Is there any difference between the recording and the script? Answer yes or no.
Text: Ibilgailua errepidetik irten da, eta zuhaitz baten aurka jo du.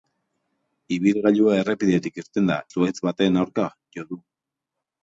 yes